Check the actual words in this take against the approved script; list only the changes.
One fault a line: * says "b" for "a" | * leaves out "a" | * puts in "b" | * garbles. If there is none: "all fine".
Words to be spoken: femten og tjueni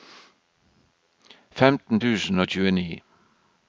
* puts in "tusen"